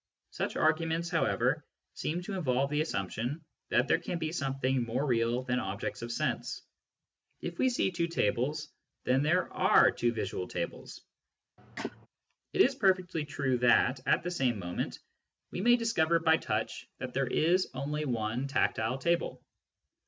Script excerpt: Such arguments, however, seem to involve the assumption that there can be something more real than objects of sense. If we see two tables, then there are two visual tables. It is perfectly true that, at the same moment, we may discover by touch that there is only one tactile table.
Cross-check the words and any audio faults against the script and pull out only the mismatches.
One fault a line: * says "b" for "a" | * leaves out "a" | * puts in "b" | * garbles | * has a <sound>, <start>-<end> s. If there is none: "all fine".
* has a cough, 11.6-12.1 s